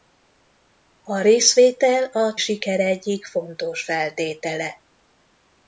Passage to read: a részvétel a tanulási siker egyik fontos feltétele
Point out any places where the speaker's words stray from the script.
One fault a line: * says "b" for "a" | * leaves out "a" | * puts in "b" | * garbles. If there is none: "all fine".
* leaves out "tanulási"